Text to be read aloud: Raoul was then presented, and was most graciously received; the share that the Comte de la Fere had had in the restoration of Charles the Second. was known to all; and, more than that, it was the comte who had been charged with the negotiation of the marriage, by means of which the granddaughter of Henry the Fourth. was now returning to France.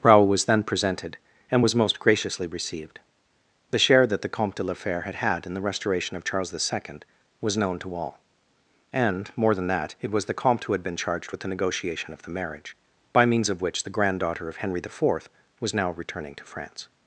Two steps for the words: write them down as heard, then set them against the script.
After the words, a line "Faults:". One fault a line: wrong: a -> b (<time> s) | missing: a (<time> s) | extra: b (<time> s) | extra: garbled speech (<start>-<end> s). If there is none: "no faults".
Raoul was then presented, and was most graciously received; the share that the Comte de la Fere had had in the restoration of Charles the Second. was known to all; and, more than that, it was the comte who had been charged with the negotiation of the marriage, by means of which the granddaughter of Henry the Fourth. was now returning to France.
Faults:
no faults